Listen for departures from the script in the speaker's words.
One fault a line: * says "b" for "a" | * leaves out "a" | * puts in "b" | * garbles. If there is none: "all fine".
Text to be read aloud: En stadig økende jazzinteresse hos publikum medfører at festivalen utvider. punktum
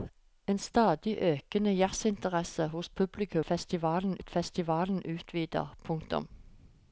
* says "festivalen" for "medfører"